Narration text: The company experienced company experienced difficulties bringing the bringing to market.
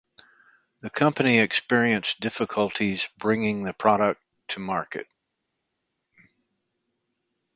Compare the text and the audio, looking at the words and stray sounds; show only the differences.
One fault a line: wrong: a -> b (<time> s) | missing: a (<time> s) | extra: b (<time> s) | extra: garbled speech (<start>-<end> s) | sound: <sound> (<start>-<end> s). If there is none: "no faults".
missing: company experienced (2.2 s)
wrong: bringing -> product (3.7 s)